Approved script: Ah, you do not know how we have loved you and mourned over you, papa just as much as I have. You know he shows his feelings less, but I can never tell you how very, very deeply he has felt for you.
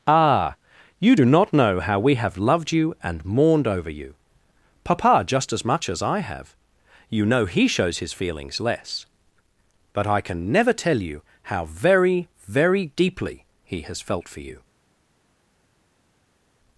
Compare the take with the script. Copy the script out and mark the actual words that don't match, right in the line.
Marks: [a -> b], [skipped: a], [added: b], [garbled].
Ah, you do not know how we have loved you and mourned over you, papa just as much as I have. You know he shows his feelings less, but I can never tell you how very, very deeply he has felt for you.